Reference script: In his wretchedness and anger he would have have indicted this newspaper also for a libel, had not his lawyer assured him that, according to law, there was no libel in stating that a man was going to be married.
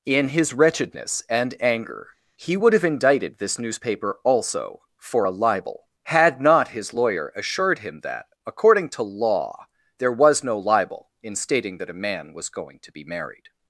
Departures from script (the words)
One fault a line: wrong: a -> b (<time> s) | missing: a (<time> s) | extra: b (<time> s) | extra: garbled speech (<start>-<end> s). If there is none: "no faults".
missing: have (2.9 s)